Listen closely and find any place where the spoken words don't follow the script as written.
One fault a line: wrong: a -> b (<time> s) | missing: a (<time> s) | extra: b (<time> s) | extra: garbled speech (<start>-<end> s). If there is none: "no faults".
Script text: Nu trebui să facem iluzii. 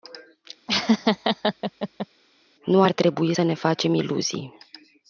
extra: ar (2.8 s)
extra: ne (3.4 s)